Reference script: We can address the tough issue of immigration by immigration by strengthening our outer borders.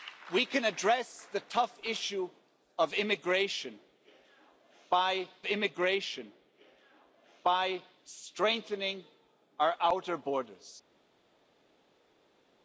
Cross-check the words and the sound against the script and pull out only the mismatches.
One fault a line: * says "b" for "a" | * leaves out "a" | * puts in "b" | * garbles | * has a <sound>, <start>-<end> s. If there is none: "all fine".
all fine